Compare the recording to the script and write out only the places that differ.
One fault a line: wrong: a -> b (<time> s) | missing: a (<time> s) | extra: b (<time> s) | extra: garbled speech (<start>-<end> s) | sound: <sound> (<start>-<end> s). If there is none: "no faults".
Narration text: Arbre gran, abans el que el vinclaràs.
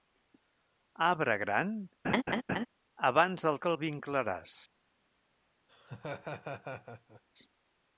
sound: laugh (2.0-2.7 s)
sound: laugh (5.7-7.2 s)